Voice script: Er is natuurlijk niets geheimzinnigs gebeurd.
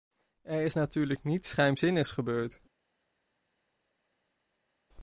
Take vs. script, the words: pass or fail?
pass